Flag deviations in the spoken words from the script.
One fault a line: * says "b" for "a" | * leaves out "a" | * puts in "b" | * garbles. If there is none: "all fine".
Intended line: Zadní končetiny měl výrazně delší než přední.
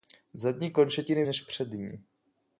* leaves out "měl výrazně delší"